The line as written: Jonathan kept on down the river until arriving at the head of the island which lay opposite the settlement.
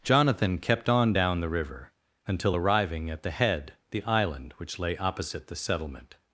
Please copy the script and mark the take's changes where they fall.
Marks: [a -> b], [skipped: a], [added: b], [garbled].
Jonathan kept on down the river until arriving at the head [skipped: of] the island which lay opposite the settlement.